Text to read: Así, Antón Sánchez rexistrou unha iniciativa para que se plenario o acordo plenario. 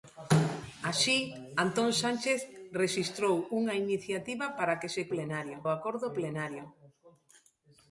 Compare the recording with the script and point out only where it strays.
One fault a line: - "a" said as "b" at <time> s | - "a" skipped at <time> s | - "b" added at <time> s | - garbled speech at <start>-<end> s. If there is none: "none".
none